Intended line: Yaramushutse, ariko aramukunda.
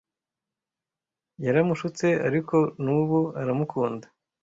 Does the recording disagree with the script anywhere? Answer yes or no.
yes